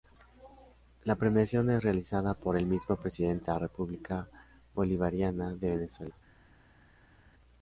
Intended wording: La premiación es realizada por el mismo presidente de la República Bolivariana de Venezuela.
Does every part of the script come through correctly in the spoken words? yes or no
no